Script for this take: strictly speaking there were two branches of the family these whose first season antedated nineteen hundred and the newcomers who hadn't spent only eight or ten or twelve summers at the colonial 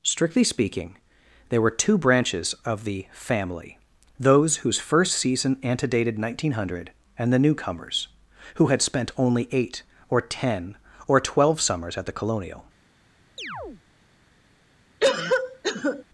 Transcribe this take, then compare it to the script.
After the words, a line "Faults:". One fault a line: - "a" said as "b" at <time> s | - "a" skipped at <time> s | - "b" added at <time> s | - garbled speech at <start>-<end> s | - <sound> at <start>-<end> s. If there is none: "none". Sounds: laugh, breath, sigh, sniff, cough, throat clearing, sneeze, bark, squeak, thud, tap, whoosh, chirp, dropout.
strictly speaking there were two branches of the family those whose first season antedated nineteen hundred and the newcomers who had spent only eight or ten or twelve summers at the colonial
Faults:
- "these" said as "those" at 4.2 s
- "hadn't" said as "had" at 8.7 s
- chirp at 13.4-13.8 s
- cough at 15.0-16.0 s